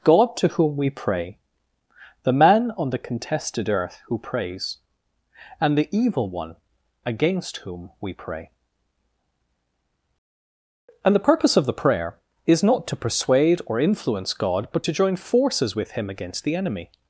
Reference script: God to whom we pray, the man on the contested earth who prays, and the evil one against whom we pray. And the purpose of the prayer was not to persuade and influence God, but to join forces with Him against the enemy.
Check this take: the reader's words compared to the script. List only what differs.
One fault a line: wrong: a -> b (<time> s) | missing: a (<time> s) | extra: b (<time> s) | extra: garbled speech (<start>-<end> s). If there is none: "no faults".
wrong: was -> is (12.5 s)
wrong: and -> or (13.7 s)